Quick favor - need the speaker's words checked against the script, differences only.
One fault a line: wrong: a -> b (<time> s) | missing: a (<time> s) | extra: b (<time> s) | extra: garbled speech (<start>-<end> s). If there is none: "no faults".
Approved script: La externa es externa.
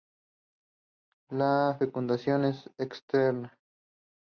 wrong: externa -> fecundación (1.8 s)